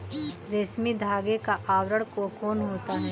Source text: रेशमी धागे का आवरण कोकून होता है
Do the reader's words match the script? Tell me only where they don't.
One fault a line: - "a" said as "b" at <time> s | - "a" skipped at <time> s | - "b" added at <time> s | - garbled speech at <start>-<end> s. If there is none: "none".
none